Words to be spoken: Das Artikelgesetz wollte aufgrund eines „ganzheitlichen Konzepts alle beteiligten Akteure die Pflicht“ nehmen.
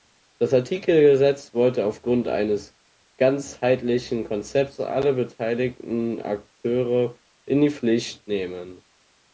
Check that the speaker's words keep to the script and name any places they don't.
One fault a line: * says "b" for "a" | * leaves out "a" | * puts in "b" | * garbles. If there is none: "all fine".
* puts in "in"